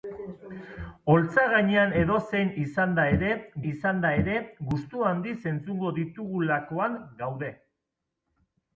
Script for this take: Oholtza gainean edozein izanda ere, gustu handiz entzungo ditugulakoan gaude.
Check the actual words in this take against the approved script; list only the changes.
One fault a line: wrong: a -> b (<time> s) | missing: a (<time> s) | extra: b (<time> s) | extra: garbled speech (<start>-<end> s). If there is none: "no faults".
extra: izanda ere (3.7 s)